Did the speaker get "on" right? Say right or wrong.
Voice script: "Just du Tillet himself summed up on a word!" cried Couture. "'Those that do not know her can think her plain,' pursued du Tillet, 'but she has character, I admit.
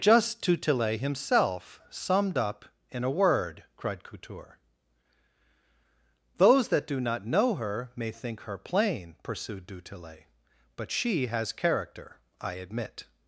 wrong